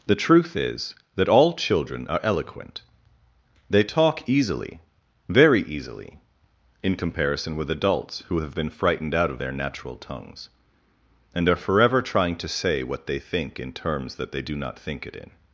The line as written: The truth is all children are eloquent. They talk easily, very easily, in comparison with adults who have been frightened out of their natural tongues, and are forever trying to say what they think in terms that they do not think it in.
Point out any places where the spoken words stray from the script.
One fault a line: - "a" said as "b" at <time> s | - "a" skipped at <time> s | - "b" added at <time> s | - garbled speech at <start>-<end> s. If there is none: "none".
- "that" added at 1.1 s